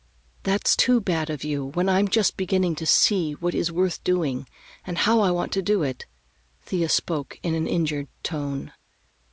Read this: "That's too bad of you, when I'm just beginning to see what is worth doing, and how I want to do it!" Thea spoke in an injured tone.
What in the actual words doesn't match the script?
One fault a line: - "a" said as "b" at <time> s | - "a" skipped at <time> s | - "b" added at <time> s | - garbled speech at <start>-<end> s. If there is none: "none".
none